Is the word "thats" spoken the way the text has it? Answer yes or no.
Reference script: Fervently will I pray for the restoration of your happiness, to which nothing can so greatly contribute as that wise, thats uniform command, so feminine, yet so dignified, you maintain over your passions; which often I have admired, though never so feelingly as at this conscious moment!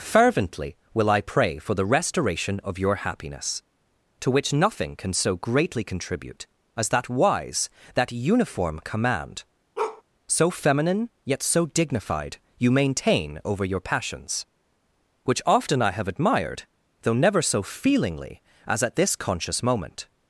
no